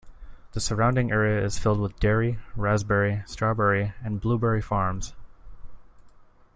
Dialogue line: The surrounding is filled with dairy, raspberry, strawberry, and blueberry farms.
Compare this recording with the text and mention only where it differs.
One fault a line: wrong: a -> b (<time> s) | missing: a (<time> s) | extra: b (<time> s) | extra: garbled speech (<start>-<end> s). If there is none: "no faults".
extra: area (1.1 s)